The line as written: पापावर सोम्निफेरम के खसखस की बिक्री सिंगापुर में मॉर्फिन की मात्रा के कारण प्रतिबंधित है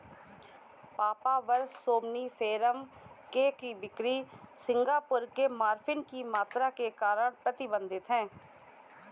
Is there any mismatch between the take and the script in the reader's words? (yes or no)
yes